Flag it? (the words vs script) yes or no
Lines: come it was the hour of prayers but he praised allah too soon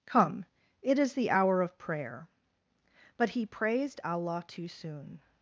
yes